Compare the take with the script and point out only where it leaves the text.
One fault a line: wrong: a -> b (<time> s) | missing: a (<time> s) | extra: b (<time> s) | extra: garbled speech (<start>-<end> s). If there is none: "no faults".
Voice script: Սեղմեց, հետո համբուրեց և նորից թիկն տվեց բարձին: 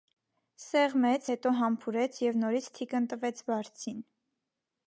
no faults